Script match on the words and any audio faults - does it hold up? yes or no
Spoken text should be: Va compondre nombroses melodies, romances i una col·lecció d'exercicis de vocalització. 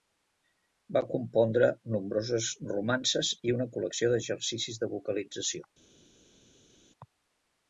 no